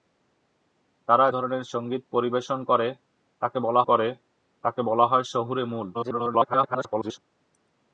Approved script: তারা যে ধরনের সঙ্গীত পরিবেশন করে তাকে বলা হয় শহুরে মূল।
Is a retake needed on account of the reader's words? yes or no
yes